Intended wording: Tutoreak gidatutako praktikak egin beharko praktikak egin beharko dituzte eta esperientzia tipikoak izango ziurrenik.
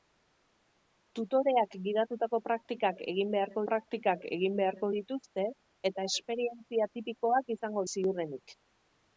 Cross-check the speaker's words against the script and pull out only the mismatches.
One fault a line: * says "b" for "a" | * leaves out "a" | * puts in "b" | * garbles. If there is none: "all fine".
all fine